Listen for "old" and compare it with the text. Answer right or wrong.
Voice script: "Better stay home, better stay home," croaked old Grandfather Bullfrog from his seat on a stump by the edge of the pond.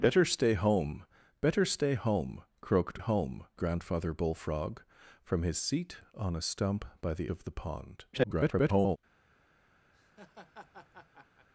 wrong